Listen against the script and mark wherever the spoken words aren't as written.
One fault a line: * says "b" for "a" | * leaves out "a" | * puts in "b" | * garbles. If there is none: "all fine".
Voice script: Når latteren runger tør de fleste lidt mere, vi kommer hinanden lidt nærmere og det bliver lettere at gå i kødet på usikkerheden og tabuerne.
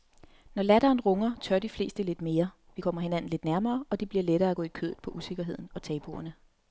all fine